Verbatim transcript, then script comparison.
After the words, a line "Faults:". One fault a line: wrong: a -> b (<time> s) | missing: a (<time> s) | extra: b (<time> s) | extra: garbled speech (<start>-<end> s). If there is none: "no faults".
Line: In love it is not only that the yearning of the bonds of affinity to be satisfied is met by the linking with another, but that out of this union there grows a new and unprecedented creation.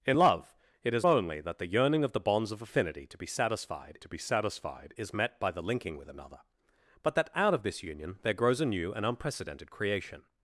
In love it is only that the yearning of the bonds of affinity to be satisfied to be satisfied is met by the linking with another, but that out of this union there grows a new and unprecedented creation.
Faults:
missing: not (1.1 s)
extra: to be satisfied (4.0 s)